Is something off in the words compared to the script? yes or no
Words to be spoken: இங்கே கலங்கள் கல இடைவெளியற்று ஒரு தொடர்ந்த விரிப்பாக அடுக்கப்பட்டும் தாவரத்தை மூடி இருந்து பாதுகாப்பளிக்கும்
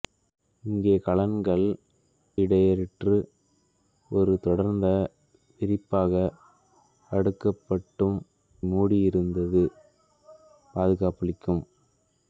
yes